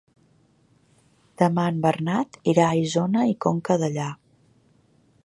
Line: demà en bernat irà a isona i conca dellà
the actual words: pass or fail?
pass